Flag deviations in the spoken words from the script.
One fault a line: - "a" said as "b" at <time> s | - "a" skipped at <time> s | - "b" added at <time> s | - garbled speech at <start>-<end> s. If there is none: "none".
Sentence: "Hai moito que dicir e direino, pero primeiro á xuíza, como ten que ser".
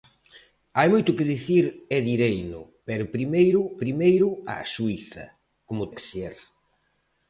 - "primeiro" added at 3.8 s
- "ten" skipped at 5.9 s